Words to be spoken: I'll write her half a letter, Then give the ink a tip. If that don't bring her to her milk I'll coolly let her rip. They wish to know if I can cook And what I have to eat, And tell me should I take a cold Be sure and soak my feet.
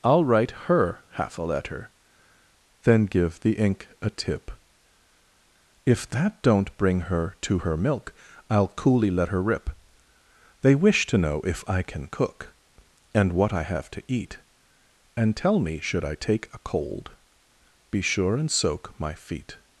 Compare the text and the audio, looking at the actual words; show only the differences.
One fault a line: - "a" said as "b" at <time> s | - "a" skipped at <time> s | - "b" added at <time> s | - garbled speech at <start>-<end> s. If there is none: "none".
none